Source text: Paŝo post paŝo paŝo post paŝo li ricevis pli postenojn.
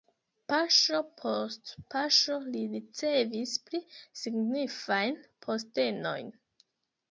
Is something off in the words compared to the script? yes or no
yes